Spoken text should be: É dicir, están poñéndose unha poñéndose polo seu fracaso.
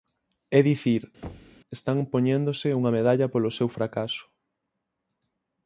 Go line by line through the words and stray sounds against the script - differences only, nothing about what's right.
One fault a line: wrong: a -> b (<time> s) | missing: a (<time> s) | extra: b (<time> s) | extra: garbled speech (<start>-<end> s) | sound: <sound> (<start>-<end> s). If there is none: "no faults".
sound: thud (1.2-1.6 s)
wrong: poñéndose -> medalla (3.0 s)